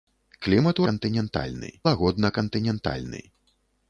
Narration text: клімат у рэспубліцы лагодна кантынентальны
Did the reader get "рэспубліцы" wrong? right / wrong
wrong